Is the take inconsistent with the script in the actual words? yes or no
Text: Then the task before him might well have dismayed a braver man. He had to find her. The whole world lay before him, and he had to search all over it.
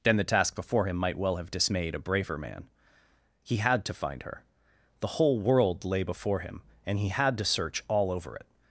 no